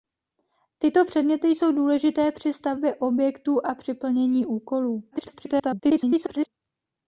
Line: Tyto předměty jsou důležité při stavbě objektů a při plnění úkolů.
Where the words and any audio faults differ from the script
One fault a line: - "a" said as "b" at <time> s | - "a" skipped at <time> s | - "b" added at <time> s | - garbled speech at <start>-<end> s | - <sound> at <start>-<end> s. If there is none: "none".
- garbled speech at 5.1-6.5 s